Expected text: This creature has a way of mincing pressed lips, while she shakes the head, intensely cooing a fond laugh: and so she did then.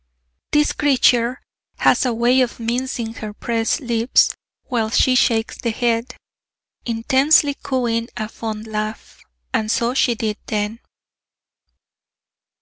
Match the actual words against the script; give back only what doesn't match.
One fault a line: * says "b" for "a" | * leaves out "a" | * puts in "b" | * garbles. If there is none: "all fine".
* puts in "her"